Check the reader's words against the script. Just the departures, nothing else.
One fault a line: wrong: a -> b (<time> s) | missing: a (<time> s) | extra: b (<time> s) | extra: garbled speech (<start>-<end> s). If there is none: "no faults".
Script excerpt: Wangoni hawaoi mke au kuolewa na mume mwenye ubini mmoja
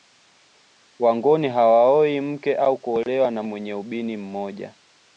missing: mume (3.4 s)